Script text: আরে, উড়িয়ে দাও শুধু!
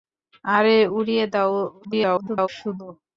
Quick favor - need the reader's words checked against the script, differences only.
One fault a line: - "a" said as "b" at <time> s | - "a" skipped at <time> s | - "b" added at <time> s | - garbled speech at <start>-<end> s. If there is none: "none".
- garbled speech at 1.8-2.5 s